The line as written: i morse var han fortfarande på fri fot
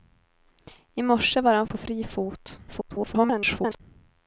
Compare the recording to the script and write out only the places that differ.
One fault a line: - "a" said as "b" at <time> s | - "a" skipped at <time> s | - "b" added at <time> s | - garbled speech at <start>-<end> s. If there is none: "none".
- "fortfarande" skipped at 1.7 s
- garbled speech at 2.7-3.8 s